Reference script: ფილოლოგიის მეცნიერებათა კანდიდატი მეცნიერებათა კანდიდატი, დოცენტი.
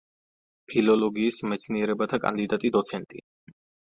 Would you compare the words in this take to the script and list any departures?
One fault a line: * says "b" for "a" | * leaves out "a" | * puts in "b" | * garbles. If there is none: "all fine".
* leaves out "მეცნიერებათა კანდიდატი"